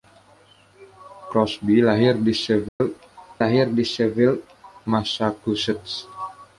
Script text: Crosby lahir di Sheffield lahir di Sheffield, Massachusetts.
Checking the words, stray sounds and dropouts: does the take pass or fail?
fail